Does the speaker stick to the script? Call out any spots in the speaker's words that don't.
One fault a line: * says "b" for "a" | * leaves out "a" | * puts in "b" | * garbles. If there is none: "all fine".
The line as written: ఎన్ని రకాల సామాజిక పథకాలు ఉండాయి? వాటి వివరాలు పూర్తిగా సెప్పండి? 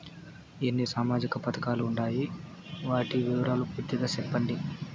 * leaves out "రకాల"